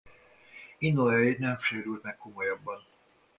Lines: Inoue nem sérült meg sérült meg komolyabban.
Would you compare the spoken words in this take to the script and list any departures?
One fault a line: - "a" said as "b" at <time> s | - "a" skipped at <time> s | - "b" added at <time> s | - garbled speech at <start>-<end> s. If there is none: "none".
- "sérült meg" skipped at 2.2 s